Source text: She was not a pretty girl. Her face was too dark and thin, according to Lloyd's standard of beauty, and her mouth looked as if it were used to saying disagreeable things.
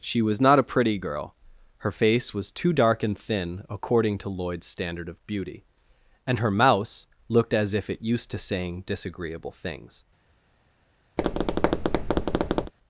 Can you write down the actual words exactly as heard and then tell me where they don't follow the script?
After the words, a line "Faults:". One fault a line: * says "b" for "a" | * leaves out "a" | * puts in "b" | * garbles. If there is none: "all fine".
She was not a pretty girl. Her face was too dark and thin, according to Lloyd's standard of beauty, and her mouse looked as if it used to saying disagreeable things.
Faults:
* says "mouse" for "mouth"
* leaves out "were"